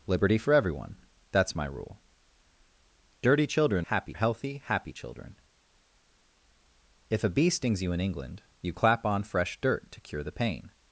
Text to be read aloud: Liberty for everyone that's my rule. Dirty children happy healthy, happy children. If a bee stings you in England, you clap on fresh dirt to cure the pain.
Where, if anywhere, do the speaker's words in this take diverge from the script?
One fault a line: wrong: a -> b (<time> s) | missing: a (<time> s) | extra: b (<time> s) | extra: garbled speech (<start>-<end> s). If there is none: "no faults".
no faults